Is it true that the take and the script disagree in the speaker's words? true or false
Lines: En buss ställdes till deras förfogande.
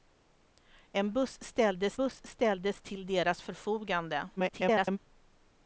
true